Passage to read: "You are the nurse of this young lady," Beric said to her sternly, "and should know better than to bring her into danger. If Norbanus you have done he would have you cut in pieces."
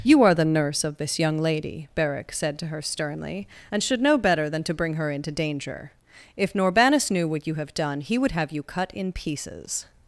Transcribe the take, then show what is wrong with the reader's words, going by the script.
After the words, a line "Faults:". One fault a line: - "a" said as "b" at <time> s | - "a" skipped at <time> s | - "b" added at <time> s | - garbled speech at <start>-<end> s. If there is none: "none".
"You are the nurse of this young lady," Beric said to her sternly, "and should know better than to bring her into danger. If Norbanus knew what you have done he would have you cut in pieces."
Faults:
- "knew what" added at 7.1 s